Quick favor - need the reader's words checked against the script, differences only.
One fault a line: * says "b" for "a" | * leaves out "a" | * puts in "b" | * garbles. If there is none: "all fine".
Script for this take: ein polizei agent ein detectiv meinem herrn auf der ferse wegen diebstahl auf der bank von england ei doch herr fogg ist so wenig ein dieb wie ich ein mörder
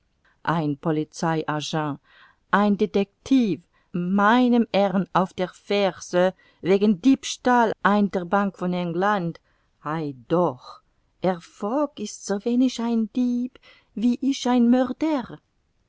* says "ein" for "auf"